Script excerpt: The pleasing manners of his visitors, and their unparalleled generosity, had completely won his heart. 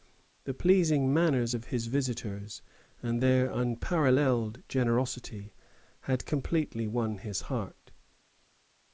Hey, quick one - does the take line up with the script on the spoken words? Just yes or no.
yes